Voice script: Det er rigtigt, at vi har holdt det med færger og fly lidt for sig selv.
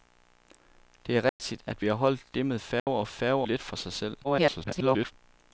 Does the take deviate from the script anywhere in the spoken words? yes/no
yes